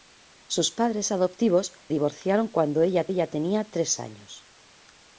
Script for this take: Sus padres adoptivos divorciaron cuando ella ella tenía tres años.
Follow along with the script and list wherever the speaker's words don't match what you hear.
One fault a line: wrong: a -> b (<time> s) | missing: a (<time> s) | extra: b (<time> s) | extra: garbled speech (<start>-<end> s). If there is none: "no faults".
no faults